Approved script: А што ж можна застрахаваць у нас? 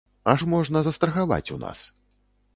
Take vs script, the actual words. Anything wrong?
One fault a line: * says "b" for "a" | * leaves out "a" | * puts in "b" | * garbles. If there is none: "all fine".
* leaves out "што"